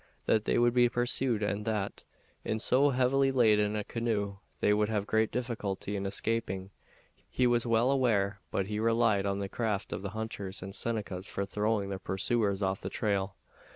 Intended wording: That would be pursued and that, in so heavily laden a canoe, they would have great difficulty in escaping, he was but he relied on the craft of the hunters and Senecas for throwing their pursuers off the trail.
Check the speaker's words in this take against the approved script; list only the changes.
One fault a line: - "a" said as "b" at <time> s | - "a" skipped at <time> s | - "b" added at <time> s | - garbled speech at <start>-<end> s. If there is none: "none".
- "they" added at 0.5 s
- "well aware" added at 7.7 s